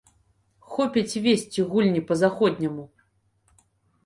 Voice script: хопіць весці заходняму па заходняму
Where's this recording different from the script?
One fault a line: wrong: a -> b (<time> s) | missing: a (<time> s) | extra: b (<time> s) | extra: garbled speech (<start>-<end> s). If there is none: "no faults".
wrong: заходняму -> гульні (1.7 s)